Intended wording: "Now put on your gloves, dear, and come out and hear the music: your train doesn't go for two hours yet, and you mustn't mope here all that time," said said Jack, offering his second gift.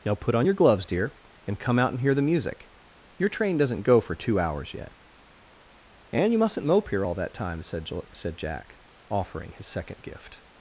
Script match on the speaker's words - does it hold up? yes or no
yes